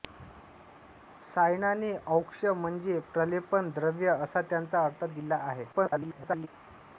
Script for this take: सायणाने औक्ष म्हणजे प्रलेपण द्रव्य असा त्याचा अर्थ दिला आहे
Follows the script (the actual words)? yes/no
no